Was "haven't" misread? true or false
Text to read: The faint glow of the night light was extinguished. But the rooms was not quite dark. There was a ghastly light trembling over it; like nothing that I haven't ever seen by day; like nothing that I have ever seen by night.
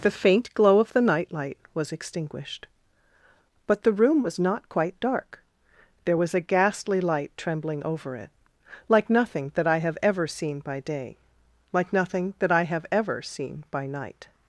true